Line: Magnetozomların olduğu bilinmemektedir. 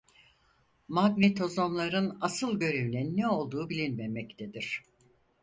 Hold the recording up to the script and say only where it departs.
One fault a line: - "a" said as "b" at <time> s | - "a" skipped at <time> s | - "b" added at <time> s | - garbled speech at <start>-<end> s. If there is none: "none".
- "asıl görevinin ne" added at 2.2 s